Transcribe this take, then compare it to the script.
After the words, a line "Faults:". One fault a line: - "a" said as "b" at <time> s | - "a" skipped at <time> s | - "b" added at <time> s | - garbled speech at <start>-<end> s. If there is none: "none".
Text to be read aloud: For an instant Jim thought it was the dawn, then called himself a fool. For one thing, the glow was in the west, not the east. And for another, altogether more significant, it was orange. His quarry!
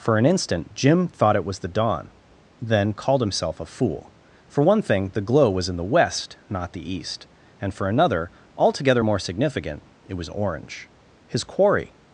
For an instant Jim thought it was the dawn, then called himself a fool. For one thing, the glow was in the west, not the east. And for another, altogether more significant, it was orange. His quarry!
Faults:
none